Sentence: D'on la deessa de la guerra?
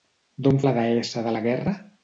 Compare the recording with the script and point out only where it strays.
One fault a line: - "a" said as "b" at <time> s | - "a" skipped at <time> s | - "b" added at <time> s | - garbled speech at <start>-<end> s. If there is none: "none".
none